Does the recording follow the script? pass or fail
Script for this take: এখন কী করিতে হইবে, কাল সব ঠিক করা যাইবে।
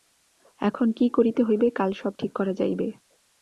pass